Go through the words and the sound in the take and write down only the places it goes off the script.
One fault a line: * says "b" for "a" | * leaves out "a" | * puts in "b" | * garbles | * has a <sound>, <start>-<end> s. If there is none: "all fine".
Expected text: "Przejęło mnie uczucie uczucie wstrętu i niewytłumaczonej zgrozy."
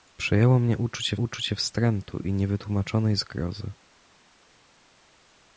all fine